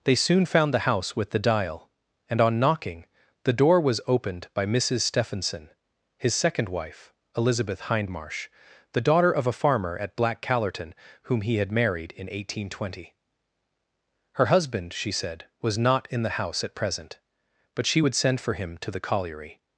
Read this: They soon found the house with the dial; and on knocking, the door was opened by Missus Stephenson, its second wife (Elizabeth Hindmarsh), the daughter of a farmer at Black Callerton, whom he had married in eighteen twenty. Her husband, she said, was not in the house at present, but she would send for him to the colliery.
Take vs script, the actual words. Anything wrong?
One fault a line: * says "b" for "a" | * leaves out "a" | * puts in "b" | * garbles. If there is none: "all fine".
* says "his" for "its"